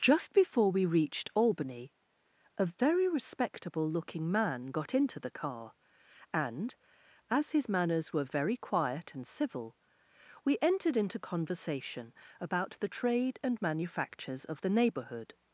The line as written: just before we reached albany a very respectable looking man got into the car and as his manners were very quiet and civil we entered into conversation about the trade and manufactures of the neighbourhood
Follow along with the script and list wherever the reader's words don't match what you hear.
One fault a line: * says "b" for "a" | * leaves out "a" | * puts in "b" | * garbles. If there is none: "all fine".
all fine